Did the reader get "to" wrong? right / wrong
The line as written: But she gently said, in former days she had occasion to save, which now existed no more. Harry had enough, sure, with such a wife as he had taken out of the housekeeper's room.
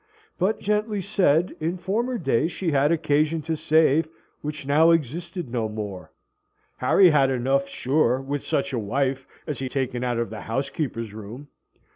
right